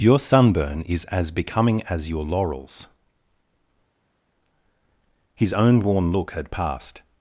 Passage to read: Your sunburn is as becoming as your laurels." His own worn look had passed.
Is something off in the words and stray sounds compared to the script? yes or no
no